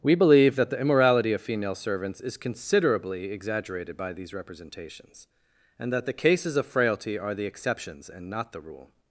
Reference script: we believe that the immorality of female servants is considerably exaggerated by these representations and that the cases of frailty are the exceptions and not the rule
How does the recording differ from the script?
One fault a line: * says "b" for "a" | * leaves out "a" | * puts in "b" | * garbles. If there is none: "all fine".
all fine